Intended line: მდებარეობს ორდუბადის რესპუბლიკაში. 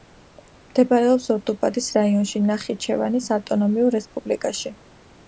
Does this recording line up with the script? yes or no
no